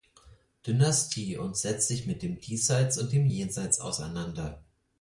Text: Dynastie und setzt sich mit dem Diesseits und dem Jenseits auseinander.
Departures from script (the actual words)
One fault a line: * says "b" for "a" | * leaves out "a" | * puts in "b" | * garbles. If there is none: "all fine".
all fine